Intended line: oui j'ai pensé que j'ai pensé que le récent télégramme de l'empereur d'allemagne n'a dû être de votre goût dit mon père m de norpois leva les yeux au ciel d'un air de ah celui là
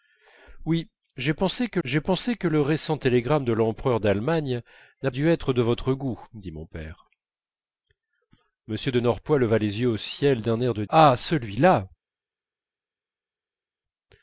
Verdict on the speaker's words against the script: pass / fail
pass